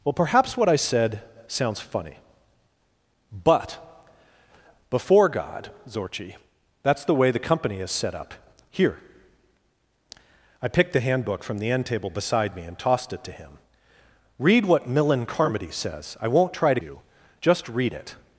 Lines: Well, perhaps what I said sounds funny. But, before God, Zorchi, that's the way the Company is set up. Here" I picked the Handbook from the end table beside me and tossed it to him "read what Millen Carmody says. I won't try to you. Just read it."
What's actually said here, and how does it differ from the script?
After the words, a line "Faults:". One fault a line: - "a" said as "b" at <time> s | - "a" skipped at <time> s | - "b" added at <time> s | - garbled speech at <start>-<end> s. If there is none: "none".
Well, perhaps what I said sounds funny. But, before God, Zorchi, that's the way the Company is set up. Here" I picked the Handbook from the end table beside me and tossed it to him "read what Millen Carmody says. I won't try to you. Just read it."
Faults:
none